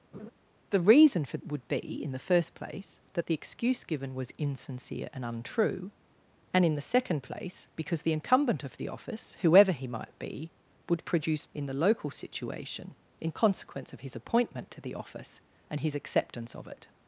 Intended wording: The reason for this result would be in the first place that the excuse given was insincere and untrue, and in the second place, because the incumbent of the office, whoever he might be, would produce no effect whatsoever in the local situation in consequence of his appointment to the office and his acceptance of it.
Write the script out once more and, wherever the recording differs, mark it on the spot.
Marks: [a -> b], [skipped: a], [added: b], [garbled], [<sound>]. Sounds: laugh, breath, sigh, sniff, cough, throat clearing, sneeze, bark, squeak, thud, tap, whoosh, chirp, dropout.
[laugh] The reason for [skipped: this result] would be in the first place that the excuse given was insincere and untrue, and in the second place, because the incumbent of the office, whoever he might be, would produce [skipped: no effect whatsoever] in the local situation in consequence of his appointment to the office and his acceptance of it.